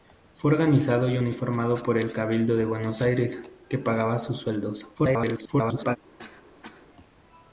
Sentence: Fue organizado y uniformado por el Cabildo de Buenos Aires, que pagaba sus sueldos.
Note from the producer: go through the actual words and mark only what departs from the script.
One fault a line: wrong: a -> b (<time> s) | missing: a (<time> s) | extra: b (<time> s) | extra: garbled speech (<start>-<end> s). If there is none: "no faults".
extra: garbled speech (4.9-6.0 s)